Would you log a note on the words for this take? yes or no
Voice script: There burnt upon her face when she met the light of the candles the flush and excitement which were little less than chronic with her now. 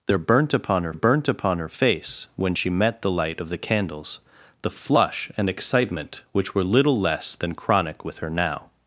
yes